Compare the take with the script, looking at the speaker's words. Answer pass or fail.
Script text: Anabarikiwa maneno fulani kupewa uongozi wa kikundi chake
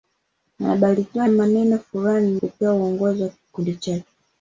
pass